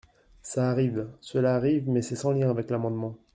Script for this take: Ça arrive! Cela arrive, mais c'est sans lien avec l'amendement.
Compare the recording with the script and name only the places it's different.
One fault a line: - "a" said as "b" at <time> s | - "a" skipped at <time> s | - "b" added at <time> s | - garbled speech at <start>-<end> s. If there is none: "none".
none